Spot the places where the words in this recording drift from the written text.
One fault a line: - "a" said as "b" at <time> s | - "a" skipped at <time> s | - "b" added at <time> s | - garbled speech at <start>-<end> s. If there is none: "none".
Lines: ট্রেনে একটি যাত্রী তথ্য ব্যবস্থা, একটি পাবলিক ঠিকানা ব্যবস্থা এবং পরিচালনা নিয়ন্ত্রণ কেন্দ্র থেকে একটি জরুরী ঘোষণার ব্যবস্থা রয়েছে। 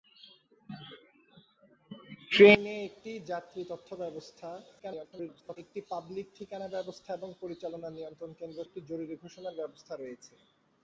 - garbled speech at 4.8-5.6 s
- "থেকে" skipped at 8.6 s